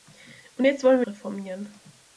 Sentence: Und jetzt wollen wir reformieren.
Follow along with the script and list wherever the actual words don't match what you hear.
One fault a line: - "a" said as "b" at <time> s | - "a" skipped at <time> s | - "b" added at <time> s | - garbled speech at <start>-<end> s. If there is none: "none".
none